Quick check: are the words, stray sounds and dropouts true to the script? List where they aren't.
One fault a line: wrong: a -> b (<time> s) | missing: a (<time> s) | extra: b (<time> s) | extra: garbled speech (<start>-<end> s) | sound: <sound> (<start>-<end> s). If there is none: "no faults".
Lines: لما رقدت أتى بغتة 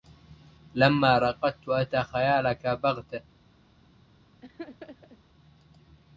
extra: خيالك (2.0 s)
sound: laugh (4.4-5.2 s)